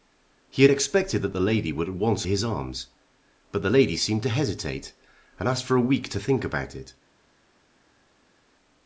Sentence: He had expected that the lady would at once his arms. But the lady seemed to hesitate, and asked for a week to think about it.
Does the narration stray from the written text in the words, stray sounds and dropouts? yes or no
no